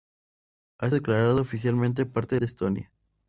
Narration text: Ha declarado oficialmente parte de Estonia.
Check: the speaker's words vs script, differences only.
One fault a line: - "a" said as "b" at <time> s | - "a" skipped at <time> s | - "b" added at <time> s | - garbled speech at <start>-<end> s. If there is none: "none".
none